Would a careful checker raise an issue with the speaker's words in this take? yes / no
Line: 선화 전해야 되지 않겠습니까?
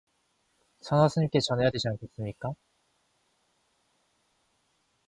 yes